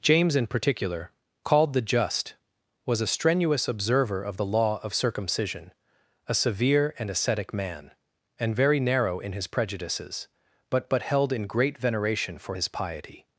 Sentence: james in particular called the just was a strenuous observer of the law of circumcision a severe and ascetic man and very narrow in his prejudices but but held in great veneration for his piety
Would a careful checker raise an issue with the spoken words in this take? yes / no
no